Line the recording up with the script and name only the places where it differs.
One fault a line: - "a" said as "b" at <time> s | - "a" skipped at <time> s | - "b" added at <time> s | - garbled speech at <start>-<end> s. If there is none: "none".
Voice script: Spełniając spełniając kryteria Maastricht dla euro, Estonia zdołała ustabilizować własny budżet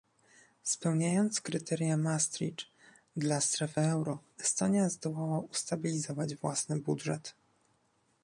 - "spełniając" skipped at 1.4 s
- "strefy" added at 3.4 s